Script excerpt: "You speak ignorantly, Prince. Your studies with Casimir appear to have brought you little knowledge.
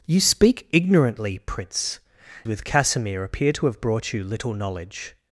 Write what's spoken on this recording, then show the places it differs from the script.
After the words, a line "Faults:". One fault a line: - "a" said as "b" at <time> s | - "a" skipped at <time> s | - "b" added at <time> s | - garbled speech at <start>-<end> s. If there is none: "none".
"You speak ignorantly, Prince. With Casimir appear to have brought you little knowledge.
Faults:
- "Your studies" skipped at 2.0 s